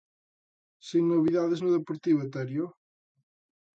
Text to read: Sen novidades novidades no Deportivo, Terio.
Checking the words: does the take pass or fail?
fail